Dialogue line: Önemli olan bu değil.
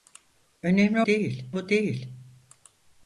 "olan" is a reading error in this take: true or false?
true